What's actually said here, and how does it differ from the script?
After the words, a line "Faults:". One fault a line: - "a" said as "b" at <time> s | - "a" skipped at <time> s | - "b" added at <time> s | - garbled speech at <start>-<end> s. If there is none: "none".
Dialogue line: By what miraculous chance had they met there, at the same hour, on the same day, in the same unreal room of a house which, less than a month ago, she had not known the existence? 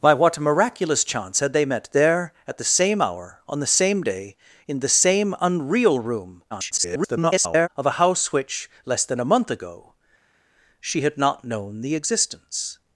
By what miraculous chance had they met there, at the same hour, on the same day, in the same unreal room [garbled] of a house which, less than a month ago, she had not known the existence?
Faults:
- garbled speech at 6.5-7.7 s